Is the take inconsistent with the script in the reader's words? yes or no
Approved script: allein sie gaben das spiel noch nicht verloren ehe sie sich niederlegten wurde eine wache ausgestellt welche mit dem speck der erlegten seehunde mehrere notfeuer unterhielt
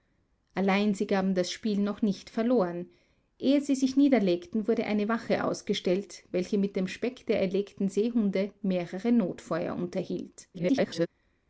yes